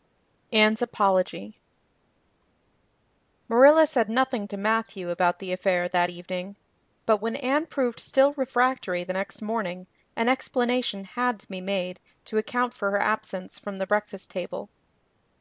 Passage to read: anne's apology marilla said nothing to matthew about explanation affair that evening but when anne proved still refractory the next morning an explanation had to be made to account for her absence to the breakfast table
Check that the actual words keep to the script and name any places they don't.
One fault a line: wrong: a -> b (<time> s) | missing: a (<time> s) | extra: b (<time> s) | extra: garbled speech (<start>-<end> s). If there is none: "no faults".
wrong: explanation -> the (5.4 s)
wrong: to -> from (13.6 s)